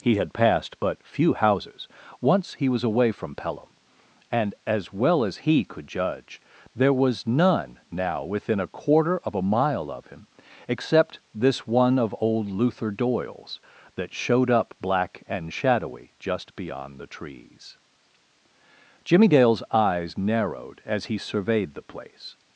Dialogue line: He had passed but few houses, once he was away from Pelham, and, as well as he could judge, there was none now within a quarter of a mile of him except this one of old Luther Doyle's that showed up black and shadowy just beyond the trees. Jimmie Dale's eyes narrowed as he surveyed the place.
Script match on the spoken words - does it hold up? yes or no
yes